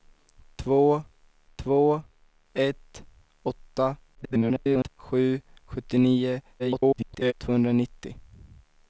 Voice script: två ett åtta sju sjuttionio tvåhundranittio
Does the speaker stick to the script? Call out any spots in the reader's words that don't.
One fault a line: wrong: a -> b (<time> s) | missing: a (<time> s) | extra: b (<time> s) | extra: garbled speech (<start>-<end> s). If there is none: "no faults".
extra: två (1.5 s)
extra: garbled speech (4.1-4.9 s)
extra: garbled speech (6.6-7.3 s)